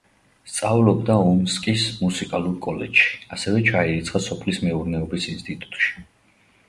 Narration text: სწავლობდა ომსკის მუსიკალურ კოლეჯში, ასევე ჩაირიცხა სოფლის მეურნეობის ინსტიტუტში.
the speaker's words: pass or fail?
pass